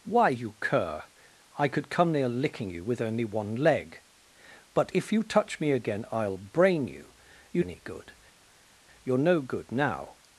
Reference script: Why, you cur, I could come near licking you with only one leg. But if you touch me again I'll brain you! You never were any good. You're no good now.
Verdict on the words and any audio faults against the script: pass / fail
fail